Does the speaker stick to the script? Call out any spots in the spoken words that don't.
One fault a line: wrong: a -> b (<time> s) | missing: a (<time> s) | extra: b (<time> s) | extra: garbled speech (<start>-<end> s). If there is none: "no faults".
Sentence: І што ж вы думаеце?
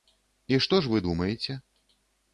no faults